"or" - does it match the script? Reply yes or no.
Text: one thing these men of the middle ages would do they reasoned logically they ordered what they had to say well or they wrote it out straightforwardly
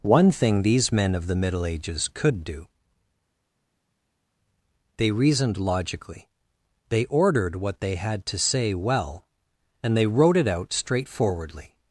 no